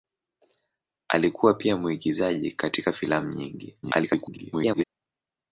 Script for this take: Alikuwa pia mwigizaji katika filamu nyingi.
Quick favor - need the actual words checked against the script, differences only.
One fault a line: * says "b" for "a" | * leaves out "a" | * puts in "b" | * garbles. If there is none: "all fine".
* garbles